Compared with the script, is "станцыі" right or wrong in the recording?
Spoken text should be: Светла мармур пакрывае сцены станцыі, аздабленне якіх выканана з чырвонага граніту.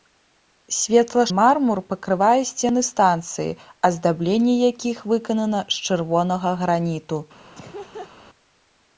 right